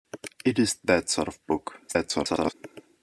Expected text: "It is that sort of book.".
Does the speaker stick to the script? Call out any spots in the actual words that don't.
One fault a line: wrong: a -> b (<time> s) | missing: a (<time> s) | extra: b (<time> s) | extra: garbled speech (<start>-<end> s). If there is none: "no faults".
extra: garbled speech (1.9-2.5 s)